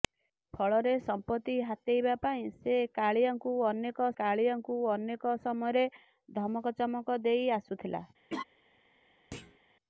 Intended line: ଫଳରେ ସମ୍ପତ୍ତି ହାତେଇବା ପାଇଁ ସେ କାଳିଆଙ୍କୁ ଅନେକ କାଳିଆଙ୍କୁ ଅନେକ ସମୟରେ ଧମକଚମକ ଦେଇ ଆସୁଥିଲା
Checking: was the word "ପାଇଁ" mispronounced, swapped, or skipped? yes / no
no